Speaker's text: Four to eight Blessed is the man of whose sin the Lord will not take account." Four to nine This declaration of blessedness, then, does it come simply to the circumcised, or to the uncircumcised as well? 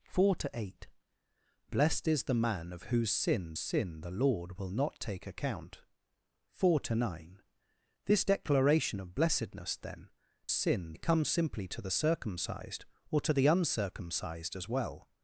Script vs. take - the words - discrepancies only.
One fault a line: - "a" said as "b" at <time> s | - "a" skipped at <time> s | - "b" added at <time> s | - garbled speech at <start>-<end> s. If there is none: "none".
- "sin" added at 3.6 s
- "does" said as "sin" at 10.5 s